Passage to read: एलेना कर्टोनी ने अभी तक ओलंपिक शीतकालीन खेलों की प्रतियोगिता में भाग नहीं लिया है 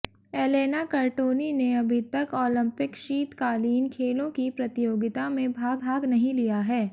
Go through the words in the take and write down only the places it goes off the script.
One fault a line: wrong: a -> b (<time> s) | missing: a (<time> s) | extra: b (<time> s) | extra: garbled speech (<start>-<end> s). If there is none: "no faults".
extra: भाग (5.8 s)